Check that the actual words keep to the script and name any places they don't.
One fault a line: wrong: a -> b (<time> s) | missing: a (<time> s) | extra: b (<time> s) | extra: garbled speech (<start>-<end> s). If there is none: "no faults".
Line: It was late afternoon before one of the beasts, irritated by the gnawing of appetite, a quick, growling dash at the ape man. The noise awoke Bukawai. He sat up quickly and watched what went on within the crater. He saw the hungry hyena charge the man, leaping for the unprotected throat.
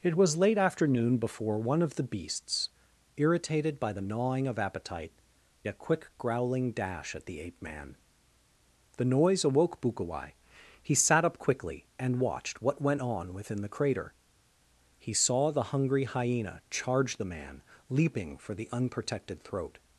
no faults